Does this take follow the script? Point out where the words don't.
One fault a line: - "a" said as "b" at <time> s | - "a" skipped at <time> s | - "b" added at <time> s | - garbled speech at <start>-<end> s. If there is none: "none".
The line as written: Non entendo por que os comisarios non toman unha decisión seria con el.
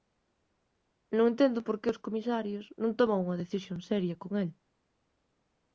none